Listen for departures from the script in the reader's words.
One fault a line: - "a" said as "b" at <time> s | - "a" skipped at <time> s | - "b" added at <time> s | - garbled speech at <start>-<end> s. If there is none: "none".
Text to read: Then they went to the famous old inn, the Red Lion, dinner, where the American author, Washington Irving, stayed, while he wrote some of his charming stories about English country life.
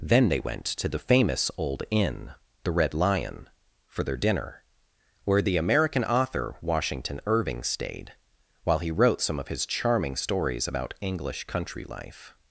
- "for their" added at 3.9 s